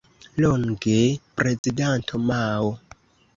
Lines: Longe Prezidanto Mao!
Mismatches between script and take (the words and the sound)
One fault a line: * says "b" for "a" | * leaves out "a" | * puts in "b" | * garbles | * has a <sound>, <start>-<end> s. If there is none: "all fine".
* has a dropout, 1.6-1.6 s